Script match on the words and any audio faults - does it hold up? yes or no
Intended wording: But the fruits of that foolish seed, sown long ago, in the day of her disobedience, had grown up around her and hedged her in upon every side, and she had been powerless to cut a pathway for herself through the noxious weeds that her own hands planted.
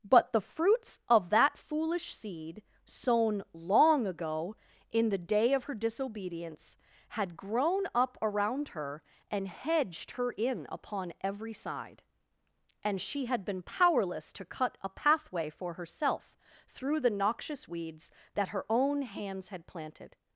no